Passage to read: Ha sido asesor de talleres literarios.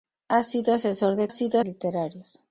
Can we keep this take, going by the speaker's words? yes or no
no